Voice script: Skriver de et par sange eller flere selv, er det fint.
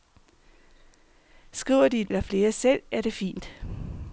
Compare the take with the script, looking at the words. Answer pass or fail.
fail